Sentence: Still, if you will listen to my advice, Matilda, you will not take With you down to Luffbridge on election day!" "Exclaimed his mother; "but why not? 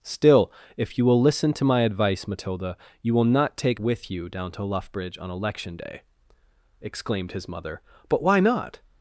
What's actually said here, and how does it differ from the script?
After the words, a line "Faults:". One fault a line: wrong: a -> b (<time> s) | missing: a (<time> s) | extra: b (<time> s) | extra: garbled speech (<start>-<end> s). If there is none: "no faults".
Still, if you will listen to my advice, Matilda, you will not take With you down to Luffbridge on election day!" "Exclaimed his mother; "but why not?
Faults:
no faults